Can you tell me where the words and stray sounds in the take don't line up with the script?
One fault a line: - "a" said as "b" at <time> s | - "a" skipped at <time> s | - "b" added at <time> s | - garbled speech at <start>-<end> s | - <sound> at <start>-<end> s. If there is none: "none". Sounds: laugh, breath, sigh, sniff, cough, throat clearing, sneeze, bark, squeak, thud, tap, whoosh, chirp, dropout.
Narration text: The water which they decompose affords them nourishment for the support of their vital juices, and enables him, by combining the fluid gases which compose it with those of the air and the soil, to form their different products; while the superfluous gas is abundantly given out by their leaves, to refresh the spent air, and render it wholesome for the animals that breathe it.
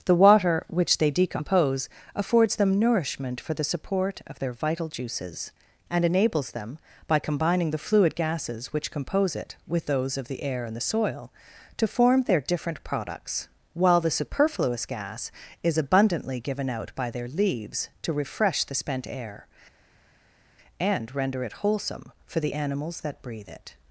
- "him" said as "them" at 6.5 s